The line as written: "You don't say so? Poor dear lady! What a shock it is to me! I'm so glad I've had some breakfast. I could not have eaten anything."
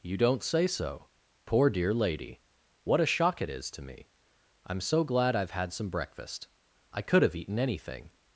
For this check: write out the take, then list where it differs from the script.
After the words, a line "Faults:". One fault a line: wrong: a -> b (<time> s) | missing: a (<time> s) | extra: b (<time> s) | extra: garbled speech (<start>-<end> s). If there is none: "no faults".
"You don't say so? Poor dear lady! What a shock it is to me! I'm so glad I've had some breakfast. I could have eaten anything."
Faults:
missing: not (7.2 s)